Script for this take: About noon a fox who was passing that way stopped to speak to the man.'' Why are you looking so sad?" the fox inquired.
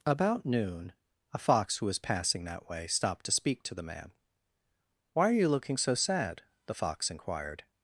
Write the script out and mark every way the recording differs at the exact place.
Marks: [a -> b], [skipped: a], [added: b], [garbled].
About noon a fox who was passing that way stopped to speak to the man.'' Why are you looking so sad?" the fox inquired.